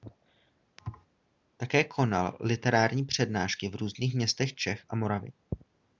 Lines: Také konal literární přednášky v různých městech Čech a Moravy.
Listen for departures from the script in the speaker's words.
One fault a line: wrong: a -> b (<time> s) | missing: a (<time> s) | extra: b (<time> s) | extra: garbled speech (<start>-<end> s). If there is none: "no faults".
no faults